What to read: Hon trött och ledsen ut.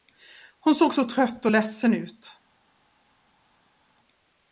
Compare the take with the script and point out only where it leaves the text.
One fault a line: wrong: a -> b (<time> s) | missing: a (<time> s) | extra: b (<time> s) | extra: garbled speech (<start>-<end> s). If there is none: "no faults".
extra: såg så (0.8 s)